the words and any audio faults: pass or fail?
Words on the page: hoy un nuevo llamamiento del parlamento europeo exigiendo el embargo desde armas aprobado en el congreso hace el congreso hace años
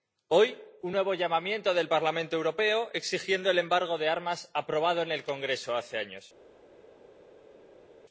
fail